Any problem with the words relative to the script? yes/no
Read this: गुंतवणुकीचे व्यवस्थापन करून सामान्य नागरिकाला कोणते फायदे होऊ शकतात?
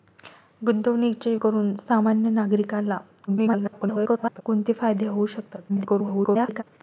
yes